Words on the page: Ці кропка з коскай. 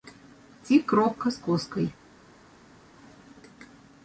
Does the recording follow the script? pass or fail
pass